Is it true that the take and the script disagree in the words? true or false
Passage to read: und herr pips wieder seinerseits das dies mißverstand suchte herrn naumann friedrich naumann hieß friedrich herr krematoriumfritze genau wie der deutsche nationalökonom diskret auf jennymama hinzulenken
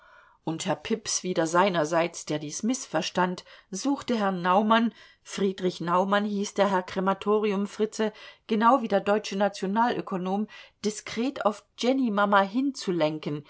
true